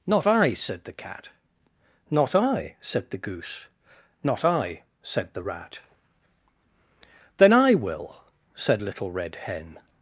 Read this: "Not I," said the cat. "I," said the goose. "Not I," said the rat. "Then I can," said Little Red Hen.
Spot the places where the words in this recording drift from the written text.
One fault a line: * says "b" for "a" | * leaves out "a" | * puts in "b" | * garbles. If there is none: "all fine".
* puts in "Not"
* says "will" for "can"